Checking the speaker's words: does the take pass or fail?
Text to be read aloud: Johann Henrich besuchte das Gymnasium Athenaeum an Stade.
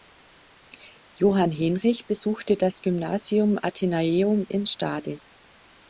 fail